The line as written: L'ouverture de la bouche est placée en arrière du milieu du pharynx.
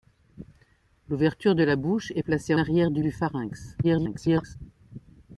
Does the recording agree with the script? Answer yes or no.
no